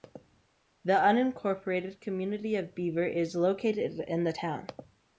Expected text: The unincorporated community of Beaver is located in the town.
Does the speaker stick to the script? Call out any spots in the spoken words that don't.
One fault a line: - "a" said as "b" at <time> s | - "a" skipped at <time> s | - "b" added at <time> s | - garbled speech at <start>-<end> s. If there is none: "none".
none